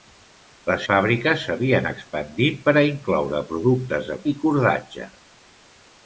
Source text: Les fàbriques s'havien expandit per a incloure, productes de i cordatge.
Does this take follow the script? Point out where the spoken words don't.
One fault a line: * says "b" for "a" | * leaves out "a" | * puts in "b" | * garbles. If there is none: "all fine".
all fine